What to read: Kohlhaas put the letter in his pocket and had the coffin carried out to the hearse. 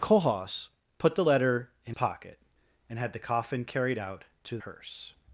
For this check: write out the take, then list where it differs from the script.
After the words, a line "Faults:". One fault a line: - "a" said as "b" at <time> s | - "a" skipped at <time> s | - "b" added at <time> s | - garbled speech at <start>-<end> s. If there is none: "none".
Kohlhaas put the letter in pocket and had the coffin carried out to hearse.
Faults:
- "his" skipped at 2.0 s
- "the" skipped at 4.6 s